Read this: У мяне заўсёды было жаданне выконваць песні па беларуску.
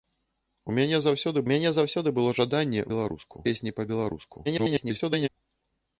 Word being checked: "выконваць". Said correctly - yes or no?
no